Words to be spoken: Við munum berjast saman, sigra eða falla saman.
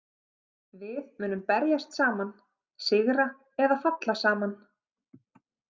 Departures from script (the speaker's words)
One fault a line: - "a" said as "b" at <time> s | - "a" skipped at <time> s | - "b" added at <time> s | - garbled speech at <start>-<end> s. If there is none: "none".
none